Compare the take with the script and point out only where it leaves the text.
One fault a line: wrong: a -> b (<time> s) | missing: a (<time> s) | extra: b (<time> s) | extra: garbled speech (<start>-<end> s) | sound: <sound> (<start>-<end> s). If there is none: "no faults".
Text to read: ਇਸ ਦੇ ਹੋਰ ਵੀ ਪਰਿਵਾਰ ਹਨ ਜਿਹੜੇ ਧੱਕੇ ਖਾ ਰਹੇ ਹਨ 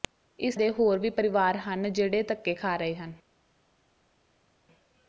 no faults